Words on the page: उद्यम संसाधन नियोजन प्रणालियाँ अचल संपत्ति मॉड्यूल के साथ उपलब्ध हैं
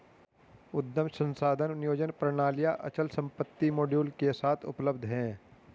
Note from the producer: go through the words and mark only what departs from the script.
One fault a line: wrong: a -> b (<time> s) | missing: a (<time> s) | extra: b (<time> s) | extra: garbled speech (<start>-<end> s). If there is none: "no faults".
no faults